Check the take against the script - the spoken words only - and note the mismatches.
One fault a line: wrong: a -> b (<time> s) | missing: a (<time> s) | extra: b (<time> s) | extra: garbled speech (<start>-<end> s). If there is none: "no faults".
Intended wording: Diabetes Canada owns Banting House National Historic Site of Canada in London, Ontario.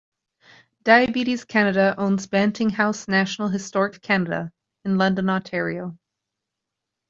missing: Site (4.0 s)